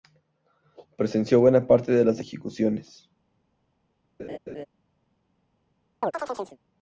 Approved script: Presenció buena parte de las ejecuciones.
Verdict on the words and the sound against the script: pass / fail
fail